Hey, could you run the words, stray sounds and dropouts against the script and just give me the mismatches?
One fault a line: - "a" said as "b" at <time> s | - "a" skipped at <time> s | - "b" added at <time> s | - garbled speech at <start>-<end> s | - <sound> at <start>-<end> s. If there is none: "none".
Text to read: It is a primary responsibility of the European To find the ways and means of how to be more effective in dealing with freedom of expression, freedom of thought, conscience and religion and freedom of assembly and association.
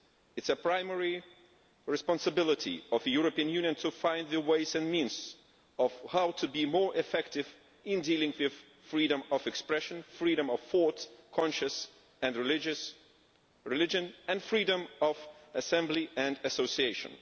- "Union" added at 3.5 s